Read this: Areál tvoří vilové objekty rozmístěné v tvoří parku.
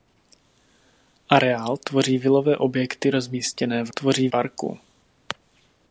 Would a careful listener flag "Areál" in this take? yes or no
no